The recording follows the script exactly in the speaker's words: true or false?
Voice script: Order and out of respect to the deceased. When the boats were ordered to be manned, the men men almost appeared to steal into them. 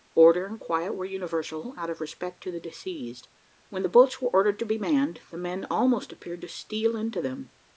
false